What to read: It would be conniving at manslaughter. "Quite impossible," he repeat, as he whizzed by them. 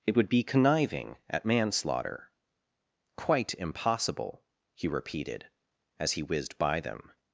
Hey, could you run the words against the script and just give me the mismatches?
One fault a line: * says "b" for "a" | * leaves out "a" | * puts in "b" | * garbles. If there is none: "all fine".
* says "repeated" for "repeat"